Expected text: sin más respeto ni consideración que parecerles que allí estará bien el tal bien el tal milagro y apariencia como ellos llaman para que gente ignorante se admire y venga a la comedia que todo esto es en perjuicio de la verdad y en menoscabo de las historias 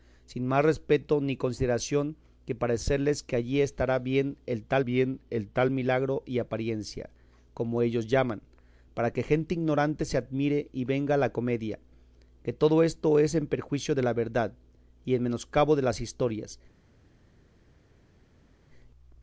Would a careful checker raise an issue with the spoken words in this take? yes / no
no